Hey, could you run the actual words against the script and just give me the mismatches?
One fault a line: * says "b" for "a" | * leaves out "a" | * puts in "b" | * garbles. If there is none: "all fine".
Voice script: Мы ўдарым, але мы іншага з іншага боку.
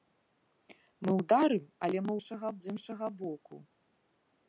all fine